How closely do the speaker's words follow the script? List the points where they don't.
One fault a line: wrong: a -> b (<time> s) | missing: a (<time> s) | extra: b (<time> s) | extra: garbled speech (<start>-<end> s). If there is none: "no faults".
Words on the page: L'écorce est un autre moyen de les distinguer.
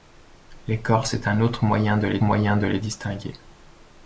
extra: moyen de les (2.2 s)